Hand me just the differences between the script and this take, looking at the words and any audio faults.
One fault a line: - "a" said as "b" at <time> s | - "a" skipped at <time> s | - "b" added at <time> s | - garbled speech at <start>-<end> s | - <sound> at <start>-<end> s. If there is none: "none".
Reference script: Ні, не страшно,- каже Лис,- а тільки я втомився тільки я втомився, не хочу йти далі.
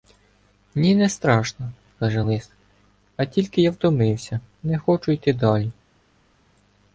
- "тільки я втомився" skipped at 4.4 s